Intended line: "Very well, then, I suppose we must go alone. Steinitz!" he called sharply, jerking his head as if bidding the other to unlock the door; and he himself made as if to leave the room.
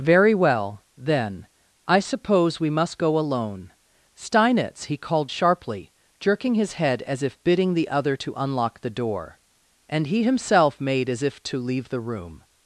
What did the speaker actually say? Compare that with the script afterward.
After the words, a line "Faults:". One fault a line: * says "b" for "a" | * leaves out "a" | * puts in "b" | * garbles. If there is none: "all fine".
"Very well, then, I suppose we must go alone. Steinitz!" he called sharply, jerking his head as if bidding the other to unlock the door; and he himself made as if to leave the room.
Faults:
all fine